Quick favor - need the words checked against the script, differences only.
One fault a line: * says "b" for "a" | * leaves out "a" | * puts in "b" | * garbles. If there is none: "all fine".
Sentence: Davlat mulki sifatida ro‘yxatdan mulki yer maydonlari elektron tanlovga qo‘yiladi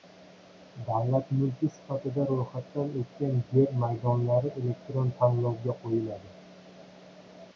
* says "o‘tgan" for "mulki"